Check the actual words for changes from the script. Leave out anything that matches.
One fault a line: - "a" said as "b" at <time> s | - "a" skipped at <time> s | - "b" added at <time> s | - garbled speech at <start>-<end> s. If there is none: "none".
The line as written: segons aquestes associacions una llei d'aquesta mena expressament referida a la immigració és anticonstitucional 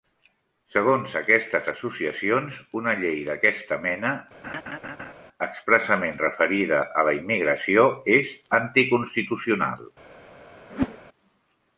none